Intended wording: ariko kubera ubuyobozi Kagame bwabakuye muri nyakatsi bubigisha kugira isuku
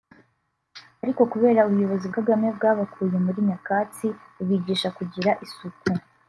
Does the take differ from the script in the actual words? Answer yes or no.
no